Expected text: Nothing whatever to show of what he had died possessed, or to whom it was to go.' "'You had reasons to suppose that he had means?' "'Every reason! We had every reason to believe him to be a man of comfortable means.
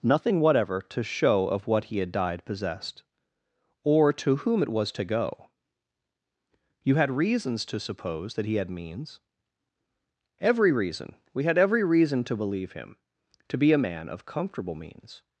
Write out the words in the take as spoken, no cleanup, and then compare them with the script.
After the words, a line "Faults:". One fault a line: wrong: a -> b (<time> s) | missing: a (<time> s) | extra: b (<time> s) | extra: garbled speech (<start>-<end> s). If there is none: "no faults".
Nothing whatever to show of what he had died possessed, or to whom it was to go.' "'You had reasons to suppose that he had means?' "'Every reason! We had every reason to believe him to be a man of comfortable means.
Faults:
no faults